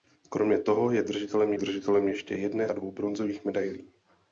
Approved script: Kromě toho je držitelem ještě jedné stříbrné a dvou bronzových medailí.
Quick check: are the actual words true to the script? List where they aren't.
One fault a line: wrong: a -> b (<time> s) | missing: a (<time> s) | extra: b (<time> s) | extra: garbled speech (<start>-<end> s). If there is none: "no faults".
extra: držitelem (1.6 s)
missing: stříbrné (2.7 s)